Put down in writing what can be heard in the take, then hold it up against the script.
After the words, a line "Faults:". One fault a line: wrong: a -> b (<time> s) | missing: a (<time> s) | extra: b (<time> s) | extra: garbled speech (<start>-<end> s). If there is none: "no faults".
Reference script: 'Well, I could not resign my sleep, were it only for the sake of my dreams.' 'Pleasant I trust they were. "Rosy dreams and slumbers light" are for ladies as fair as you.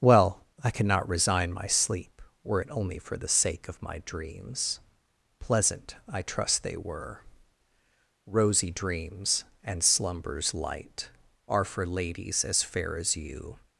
'Well, I cannot resign my sleep, were it only for the sake of my dreams.' 'Pleasant I trust they were. "Rosy dreams and slumbers light" are for ladies as fair as you.
Faults:
wrong: could not -> cannot (0.7 s)